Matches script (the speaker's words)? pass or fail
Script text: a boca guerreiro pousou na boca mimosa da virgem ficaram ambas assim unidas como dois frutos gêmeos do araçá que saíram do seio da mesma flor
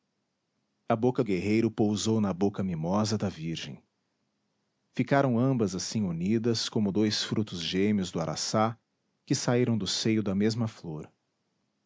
pass